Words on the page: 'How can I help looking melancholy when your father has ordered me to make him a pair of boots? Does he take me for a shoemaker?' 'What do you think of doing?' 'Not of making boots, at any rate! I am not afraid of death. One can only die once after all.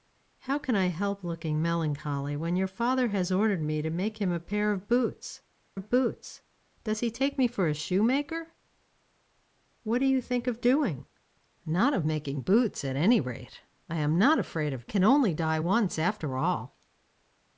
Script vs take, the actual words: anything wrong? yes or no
yes